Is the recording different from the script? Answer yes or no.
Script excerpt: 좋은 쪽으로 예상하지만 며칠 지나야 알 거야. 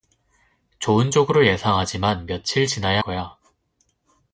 yes